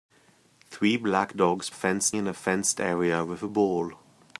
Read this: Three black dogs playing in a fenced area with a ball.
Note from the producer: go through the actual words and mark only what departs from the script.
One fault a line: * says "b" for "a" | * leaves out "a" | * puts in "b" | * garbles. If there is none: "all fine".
* says "fenced" for "playing"